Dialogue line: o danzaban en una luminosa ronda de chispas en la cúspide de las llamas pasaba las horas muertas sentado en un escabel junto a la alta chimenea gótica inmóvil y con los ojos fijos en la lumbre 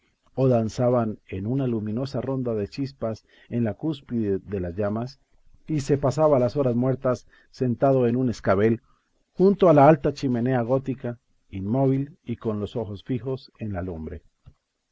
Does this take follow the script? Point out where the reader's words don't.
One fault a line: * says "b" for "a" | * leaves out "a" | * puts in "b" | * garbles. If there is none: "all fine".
* puts in "y se"